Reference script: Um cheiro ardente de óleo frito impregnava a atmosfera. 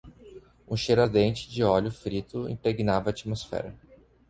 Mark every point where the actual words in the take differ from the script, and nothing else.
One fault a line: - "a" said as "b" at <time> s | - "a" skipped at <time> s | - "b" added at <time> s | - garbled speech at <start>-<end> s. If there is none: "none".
none